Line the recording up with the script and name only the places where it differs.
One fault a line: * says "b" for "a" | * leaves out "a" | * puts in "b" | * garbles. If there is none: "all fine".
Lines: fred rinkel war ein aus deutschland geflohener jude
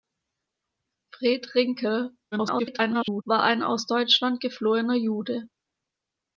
* garbles